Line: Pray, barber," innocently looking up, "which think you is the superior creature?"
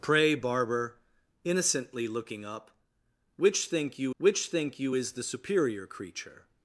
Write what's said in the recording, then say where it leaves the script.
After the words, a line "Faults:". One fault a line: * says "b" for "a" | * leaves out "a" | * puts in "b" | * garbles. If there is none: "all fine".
Pray, barber," innocently looking up, "which think you which think you is the superior creature?"
Faults:
* puts in "which think you"